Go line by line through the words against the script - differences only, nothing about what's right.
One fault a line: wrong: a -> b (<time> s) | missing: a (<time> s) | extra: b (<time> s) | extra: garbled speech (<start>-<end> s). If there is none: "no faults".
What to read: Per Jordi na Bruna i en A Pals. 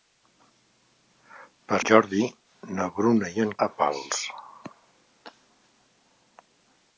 no faults